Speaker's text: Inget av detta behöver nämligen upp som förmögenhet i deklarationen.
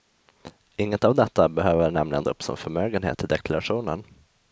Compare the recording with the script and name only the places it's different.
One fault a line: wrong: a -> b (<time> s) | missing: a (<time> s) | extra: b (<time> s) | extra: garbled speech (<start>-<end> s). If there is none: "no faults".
no faults